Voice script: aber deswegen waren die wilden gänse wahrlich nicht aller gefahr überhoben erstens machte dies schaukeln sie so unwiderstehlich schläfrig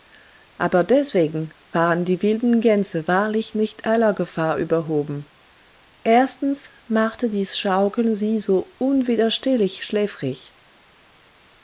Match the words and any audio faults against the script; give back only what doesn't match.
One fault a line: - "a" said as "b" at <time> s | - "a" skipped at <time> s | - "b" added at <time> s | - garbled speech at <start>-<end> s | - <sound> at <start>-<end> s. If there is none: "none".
none